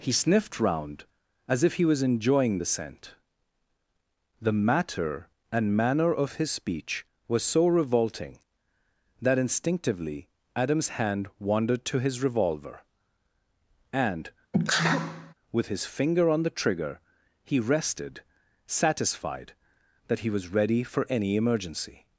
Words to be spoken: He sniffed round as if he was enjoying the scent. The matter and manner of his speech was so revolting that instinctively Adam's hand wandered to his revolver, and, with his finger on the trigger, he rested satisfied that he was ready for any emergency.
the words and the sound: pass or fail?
fail